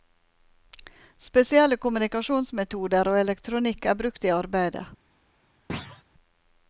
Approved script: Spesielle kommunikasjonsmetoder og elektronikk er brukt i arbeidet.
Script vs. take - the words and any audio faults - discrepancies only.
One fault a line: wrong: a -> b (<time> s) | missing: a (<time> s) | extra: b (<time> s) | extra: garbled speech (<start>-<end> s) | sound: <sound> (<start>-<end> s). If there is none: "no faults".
sound: thud (5.7-6.0 s)